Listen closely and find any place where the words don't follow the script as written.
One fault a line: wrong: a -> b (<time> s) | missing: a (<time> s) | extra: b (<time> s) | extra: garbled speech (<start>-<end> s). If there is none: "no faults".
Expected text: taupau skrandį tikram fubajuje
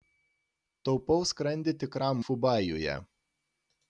no faults